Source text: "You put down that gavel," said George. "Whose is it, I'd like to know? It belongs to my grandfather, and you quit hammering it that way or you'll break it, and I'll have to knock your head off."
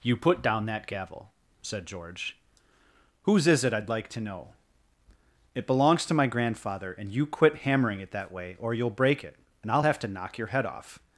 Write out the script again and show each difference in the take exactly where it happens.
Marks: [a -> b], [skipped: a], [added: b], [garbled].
"You put down that gavel," said George. "Whose is it, I'd like to know? It belongs to my grandfather, and you quit hammering it that way or you'll break it, and I'll have to knock your head off."